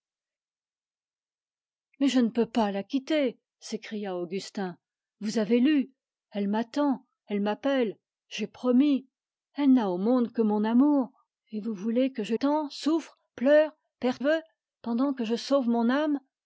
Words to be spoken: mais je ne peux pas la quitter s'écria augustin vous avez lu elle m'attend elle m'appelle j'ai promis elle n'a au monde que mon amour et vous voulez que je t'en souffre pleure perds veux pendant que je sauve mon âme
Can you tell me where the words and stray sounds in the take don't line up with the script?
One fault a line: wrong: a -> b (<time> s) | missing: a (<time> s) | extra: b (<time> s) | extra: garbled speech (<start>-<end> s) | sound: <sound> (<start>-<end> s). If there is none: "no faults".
no faults